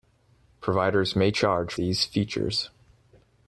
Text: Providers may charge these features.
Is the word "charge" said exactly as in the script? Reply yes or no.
yes